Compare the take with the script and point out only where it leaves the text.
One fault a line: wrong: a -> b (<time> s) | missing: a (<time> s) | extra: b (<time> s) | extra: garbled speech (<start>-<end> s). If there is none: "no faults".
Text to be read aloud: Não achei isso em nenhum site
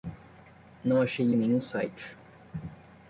missing: isso (1.3 s)